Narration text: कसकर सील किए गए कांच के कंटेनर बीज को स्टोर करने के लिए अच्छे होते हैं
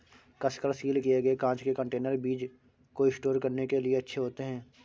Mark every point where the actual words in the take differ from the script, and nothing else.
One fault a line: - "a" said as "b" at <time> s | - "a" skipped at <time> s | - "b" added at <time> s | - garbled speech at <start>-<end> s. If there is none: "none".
none